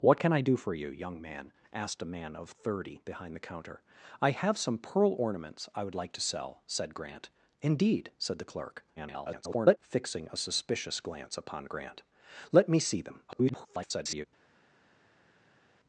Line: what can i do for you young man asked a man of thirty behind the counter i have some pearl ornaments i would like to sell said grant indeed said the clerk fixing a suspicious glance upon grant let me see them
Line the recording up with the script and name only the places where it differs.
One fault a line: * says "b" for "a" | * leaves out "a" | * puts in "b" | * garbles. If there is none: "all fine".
* garbles
* garbles